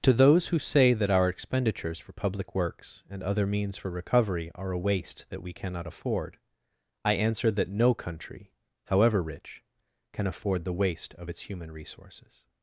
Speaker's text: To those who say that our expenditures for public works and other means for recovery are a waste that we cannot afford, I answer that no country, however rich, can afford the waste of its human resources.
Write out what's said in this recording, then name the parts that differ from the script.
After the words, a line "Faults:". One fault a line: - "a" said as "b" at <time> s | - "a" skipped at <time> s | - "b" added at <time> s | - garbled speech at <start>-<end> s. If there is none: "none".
To those who say that our expenditures for public works and other means for recovery are a waste that we cannot afford, I answer that no country, however rich, can afford the waste of its human resources.
Faults:
none